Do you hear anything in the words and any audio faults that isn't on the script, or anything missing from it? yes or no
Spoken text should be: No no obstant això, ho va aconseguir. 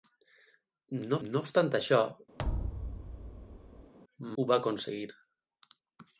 yes